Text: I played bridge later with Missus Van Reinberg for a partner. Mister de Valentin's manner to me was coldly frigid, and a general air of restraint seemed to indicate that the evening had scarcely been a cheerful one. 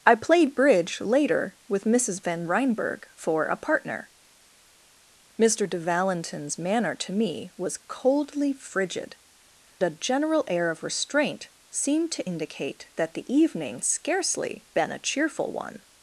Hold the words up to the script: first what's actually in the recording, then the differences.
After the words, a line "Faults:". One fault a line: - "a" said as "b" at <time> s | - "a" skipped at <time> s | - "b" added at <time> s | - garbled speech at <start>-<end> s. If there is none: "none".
I played bridge later with Missus Van Reinberg for a partner. Mister de Valentin's manner to me was coldly frigid, a general air of restraint seemed to indicate that the evening scarcely been a cheerful one.
Faults:
- "and" skipped at 9.2 s
- "had" skipped at 13.8 s